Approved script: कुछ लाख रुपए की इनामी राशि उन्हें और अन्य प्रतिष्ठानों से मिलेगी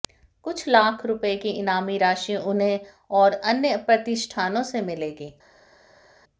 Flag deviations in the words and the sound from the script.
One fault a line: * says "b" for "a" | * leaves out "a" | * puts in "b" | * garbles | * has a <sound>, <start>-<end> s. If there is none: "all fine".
all fine